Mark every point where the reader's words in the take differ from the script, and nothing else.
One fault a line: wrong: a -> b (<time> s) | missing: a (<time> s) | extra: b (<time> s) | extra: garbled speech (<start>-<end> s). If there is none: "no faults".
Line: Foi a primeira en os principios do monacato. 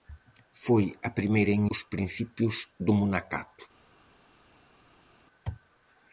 no faults